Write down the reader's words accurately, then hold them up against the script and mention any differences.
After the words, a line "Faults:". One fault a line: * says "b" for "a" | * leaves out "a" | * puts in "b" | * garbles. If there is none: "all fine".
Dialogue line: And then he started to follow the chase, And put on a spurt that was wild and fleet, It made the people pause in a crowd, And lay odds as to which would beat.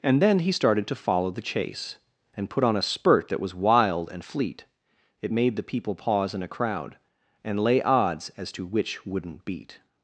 And then he started to follow the chase, And put on a spurt that was wild and fleet, It made the people pause in a crowd, And lay odds as to which wouldn't beat.
Faults:
* says "wouldn't" for "would"